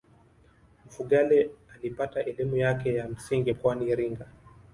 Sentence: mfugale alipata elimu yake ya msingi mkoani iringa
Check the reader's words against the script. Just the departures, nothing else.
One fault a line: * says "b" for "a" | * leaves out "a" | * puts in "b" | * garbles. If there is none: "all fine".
all fine